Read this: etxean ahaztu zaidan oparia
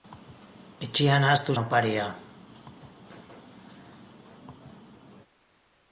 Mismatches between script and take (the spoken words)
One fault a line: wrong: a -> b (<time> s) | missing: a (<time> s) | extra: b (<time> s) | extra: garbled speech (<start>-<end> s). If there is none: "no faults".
missing: zaidan (1.6 s)